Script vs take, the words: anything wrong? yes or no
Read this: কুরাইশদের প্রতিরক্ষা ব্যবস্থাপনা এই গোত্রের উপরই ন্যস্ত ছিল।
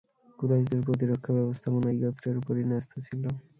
no